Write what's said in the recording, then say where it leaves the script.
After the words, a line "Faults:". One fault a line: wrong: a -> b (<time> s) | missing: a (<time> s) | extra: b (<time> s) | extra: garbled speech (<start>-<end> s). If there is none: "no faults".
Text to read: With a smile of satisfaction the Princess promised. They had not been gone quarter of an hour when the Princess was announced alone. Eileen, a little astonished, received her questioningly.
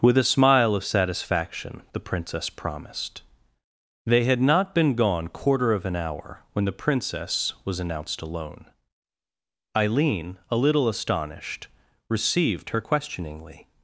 With a smile of satisfaction the Princess promised. They had not been gone quarter of an hour when the Princess was announced alone. Eileen, a little astonished, received her questioningly.
Faults:
no faults